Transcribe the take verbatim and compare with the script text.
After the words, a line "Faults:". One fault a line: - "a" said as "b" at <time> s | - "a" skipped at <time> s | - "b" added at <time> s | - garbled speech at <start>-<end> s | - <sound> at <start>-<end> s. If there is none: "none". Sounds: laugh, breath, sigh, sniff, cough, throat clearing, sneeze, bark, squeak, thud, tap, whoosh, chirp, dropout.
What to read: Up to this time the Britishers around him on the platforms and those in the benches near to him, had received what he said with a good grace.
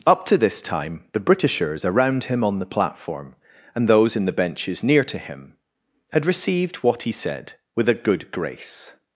Up to this time the Britishers around him on the platform and those in the benches near to him, had received what he said with a good grace.
Faults:
- "platforms" said as "platform" at 2.6 s